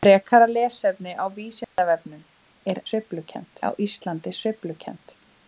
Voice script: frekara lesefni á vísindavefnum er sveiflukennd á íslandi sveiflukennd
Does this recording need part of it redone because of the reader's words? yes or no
no